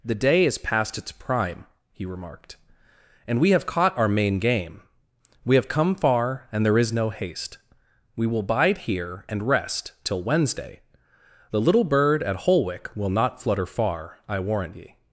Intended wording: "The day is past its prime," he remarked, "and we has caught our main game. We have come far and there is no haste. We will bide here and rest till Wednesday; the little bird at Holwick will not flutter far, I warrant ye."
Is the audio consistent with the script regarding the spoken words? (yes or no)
no